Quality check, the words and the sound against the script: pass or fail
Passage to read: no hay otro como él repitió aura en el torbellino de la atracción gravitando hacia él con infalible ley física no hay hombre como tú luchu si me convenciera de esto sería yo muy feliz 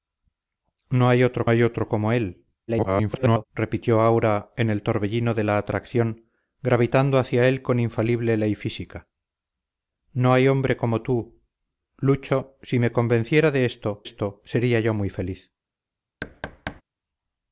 fail